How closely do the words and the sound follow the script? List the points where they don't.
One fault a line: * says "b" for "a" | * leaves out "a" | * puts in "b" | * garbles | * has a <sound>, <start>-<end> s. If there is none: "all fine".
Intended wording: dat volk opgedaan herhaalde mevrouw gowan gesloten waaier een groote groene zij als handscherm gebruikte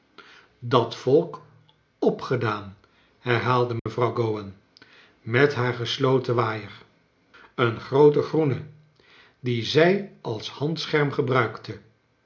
* has a dropout, 3.8-3.9 s
* puts in "met haar"
* puts in "dien"